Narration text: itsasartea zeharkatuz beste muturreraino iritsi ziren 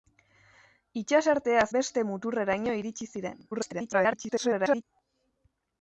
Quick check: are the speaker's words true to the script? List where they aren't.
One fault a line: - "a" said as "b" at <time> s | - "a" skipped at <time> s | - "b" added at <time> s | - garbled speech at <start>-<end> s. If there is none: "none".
- "zeharkatuz" skipped at 1.6 s
- garbled speech at 3.5-4.8 s